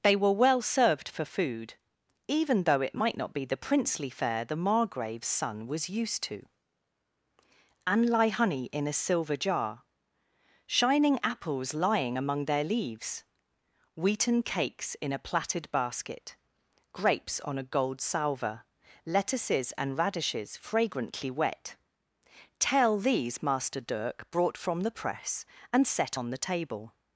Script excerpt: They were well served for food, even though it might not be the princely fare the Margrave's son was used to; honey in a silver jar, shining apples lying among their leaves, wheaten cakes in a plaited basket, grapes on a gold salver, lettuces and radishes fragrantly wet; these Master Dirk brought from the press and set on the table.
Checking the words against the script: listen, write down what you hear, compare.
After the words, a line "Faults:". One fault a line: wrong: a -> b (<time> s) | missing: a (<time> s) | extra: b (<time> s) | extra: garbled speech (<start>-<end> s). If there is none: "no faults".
They were well served for food, even though it might not be the princely fare the Margrave's son was used to; and lie honey in a silver jar, shining apples lying among their leaves, wheaten cakes in a plaited basket, grapes on a gold salver, lettuces and radishes fragrantly wet; tell these Master Dirk brought from the press and set on the table.
Faults:
extra: and lie (7.8 s)
extra: tell (22.6 s)